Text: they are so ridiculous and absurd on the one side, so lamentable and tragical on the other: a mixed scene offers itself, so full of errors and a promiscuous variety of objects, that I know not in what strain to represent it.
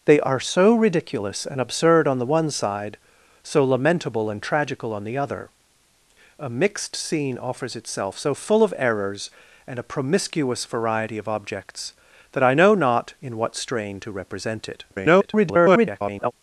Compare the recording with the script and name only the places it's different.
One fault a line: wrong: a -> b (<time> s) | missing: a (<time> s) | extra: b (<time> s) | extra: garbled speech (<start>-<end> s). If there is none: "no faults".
extra: garbled speech (14.9-16.3 s)